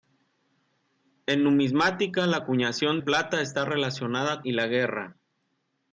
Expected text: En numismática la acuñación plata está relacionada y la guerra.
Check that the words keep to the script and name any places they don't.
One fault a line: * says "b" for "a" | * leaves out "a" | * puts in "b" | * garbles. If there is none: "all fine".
all fine